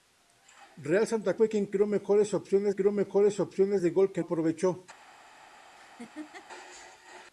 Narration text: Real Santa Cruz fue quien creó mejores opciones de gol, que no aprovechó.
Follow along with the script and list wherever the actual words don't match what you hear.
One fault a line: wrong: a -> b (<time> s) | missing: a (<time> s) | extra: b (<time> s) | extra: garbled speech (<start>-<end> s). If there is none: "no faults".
missing: Cruz (1.4 s)
extra: creó mejores opciones (2.7 s)
missing: no (4.2 s)